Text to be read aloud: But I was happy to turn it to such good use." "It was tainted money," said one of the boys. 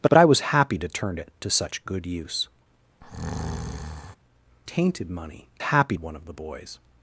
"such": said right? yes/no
yes